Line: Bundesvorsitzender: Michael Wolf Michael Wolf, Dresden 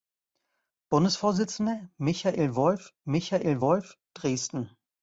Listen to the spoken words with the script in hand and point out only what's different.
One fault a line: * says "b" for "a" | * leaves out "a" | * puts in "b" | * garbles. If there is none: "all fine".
all fine